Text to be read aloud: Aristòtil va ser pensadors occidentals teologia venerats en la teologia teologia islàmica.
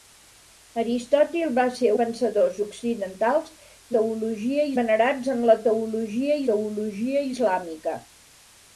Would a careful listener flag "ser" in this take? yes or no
no